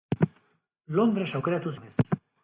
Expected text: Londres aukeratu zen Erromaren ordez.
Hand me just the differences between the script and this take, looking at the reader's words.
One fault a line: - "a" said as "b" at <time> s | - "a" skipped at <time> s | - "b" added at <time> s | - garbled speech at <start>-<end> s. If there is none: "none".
- "zen Erromaren" skipped at 1.7 s